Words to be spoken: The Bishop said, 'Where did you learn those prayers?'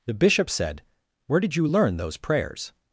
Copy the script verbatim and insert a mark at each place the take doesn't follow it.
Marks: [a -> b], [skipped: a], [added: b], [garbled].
The Bishop said, 'Where did you learn those prayers?'